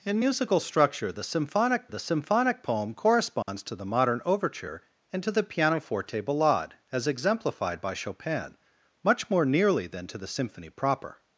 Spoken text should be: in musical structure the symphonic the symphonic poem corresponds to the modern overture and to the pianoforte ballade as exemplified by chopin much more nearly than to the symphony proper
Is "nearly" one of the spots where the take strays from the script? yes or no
no